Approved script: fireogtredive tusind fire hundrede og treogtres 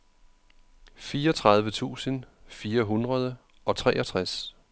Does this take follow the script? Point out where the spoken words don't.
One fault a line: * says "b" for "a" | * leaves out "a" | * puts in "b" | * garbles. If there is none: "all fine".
all fine